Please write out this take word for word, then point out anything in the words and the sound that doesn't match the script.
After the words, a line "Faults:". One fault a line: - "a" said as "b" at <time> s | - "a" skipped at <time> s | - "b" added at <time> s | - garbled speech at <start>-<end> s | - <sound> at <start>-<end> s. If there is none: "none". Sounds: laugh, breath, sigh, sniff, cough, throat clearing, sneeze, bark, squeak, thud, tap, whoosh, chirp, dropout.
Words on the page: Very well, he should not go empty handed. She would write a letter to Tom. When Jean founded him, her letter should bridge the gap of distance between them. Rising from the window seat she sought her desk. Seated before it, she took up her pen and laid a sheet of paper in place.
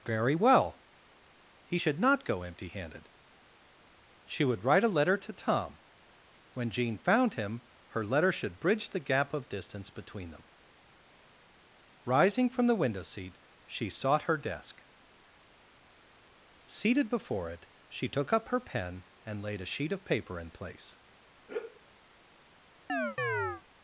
Very well, he should not go empty handed. She would write a letter to Tom. When Jean found him, her letter should bridge the gap of distance between them. Rising from the window seat she sought her desk. Seated before it, she took up her pen and laid a sheet of paper in place.
Faults:
- "founded" said as "found" at 7.0 s
- sigh at 21.5-21.8 s
- chirp at 22.9-23.6 s